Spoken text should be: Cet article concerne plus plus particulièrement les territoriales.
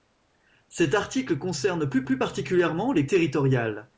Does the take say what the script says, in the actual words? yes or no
yes